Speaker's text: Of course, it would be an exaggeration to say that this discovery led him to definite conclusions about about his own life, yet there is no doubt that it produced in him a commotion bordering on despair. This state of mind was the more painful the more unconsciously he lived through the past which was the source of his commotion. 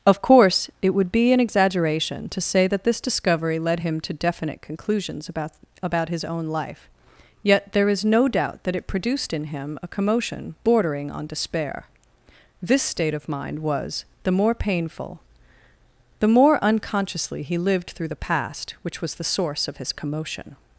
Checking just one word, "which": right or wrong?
right